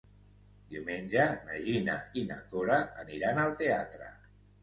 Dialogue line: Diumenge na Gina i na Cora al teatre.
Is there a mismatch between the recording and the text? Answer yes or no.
yes